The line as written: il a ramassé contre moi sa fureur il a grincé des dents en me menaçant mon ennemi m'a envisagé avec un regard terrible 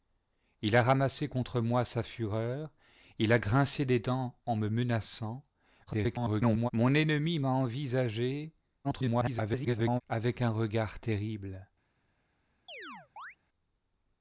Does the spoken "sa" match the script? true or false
true